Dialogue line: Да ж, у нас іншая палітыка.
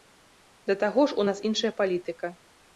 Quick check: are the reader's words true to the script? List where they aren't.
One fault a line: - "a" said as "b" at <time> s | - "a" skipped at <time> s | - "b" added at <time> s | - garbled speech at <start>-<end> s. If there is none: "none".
- "таго" added at 0.8 s